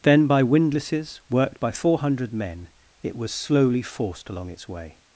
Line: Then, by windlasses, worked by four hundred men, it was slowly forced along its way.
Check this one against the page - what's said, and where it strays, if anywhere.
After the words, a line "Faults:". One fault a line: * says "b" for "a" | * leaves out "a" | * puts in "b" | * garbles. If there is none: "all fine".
Then, by windlasses, worked by four hundred men, it was slowly forced along its way.
Faults:
all fine